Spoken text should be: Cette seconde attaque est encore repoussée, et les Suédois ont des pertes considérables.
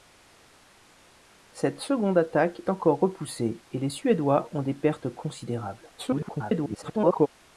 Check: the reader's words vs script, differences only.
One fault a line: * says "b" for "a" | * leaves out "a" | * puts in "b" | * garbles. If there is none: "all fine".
* leaves out "est"
* garbles